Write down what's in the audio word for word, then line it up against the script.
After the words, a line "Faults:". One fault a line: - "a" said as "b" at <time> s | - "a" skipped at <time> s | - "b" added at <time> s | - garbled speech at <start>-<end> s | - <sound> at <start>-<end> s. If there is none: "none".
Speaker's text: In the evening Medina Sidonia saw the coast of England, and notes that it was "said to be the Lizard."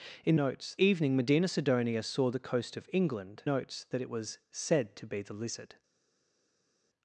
In notes evening Medina Sidonia saw the coast of England, notes that it was "said to be the Lizard."
Faults:
- "the" said as "notes" at 0.3 s
- "and" skipped at 3.4 s